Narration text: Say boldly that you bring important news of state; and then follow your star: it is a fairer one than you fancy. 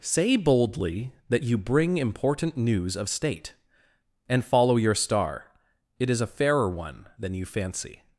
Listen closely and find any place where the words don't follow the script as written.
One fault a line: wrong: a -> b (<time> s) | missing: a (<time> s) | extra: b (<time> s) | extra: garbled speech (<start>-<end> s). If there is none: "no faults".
missing: then (4.5 s)